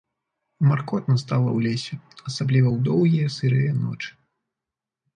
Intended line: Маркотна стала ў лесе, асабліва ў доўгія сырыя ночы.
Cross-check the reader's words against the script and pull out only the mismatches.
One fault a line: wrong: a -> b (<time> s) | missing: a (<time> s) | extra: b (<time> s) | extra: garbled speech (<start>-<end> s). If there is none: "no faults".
no faults